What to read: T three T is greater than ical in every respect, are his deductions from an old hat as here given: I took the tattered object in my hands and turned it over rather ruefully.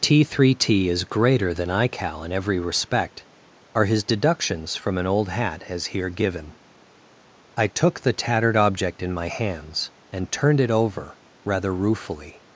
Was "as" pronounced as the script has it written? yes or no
yes